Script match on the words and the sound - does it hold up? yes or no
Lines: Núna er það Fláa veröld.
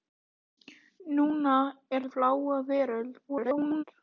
no